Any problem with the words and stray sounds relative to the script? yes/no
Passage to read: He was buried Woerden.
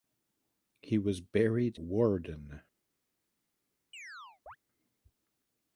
yes